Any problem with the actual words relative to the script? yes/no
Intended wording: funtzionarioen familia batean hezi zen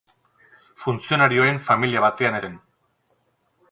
yes